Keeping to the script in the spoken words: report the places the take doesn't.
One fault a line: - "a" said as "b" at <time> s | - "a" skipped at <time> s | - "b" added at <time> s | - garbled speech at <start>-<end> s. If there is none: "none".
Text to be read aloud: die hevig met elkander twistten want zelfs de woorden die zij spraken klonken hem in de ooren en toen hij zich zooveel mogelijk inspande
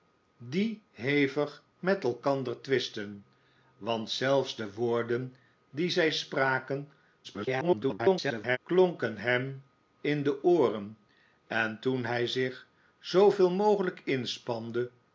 - garbled speech at 7.2-8.6 s